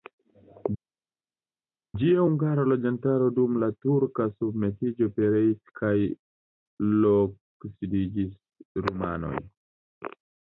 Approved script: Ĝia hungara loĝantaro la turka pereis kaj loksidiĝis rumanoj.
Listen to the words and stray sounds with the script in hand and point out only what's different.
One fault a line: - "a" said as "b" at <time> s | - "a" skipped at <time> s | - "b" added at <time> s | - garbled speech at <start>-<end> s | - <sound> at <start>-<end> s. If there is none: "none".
- "dum" added at 3.4 s
- "submetiĝo" added at 4.4 s